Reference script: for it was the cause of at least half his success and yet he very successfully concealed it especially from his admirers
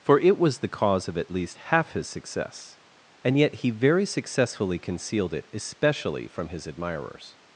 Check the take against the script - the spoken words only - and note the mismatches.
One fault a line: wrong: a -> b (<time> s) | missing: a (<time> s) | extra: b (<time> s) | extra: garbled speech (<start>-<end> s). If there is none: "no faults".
no faults